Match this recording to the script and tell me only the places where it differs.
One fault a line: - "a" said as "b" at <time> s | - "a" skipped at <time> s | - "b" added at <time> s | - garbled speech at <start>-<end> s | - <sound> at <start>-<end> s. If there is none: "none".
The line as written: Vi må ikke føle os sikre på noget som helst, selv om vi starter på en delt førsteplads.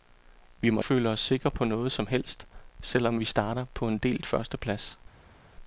- "ikke" skipped at 0.8 s